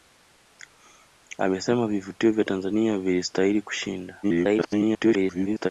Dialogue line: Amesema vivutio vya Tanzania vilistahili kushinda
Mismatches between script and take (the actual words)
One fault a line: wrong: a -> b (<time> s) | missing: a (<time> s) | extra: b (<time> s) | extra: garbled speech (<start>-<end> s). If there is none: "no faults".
extra: garbled speech (4.2-5.7 s)